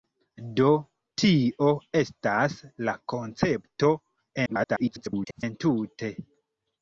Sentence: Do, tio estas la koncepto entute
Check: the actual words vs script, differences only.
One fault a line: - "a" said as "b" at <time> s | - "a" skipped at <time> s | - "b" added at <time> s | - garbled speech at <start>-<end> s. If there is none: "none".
- garbled speech at 4.5-5.4 s